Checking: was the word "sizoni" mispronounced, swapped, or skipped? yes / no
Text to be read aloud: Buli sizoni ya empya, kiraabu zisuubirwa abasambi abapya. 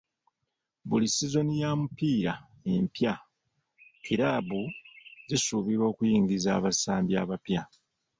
no